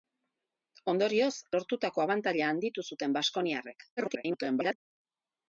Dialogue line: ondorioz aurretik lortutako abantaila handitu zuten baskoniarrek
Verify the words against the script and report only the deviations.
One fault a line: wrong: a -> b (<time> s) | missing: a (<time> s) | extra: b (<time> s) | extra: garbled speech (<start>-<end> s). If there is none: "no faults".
missing: aurretik (1.4 s)
extra: garbled speech (4.0-4.8 s)